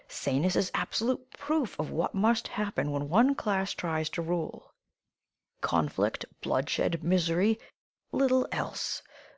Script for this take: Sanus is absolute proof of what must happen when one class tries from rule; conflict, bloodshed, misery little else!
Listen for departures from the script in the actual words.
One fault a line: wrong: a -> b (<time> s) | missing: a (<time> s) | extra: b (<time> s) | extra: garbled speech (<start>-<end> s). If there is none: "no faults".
wrong: from -> to (4.1 s)